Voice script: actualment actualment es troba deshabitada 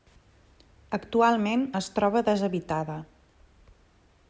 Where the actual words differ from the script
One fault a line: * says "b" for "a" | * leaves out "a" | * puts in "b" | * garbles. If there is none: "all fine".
* leaves out "actualment"